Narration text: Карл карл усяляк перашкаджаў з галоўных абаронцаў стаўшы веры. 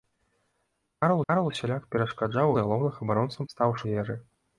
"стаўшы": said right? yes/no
yes